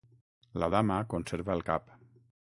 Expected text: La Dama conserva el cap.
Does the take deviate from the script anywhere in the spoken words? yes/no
no